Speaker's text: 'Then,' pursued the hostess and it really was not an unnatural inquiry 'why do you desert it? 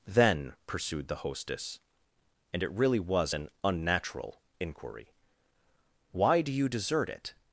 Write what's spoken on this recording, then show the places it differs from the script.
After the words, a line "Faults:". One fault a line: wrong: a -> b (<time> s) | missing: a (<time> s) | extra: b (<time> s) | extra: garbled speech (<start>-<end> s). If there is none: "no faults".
'Then,' pursued the hostess and it really was an unnatural inquiry 'why do you desert it?
Faults:
missing: not (3.3 s)